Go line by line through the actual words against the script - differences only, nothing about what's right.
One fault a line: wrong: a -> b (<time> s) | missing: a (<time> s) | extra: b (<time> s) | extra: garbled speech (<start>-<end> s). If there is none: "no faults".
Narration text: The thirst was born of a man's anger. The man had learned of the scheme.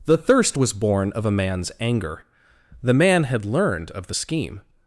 no faults